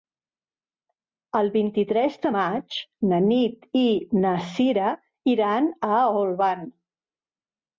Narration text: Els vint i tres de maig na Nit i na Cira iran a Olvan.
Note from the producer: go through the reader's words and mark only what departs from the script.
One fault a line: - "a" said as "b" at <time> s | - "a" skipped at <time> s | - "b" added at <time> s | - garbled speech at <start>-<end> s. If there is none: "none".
- "Els" said as "El" at 1.4 s